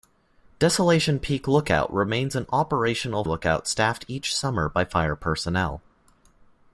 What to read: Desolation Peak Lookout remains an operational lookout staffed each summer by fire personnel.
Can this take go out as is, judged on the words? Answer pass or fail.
pass